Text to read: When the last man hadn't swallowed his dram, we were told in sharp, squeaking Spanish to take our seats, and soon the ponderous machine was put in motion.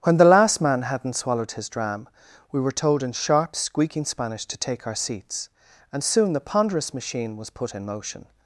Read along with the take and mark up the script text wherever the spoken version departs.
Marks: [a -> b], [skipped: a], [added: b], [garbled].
When the last man hadn't swallowed his dram, we were told in sharp, squeaking Spanish to take our seats, and soon the ponderous machine was put in motion.